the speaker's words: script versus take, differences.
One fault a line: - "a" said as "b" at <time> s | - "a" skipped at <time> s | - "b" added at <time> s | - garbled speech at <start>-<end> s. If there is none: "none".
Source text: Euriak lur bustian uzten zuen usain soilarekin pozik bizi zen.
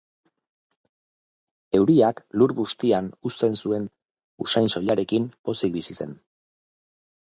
none